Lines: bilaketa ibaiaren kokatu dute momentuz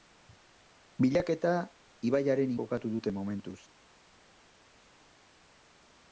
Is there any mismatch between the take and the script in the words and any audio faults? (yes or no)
no